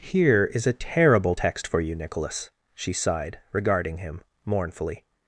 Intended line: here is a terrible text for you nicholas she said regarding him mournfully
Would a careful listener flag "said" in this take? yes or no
yes